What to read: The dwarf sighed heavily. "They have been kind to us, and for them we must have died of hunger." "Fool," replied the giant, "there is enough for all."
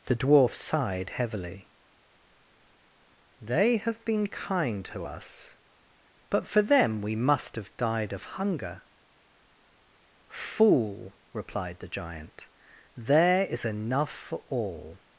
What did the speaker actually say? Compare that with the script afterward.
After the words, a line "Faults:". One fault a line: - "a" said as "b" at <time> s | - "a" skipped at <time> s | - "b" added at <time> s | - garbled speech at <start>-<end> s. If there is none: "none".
The dwarf sighed heavily. "They have been kind to us, but for them we must have died of hunger." "Fool," replied the giant, "there is enough for all."
Faults:
- "and" said as "but" at 6.3 s